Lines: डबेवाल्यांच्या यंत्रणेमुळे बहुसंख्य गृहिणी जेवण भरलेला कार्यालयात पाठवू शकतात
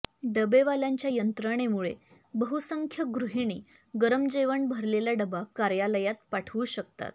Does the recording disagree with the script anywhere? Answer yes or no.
yes